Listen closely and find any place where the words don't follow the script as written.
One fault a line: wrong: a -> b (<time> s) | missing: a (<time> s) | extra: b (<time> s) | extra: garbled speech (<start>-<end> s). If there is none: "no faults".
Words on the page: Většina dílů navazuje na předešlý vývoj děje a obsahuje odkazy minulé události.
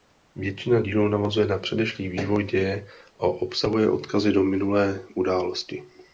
extra: do (4.3 s)